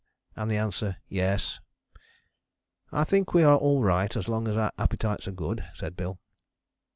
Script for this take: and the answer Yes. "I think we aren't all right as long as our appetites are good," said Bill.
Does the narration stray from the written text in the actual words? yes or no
yes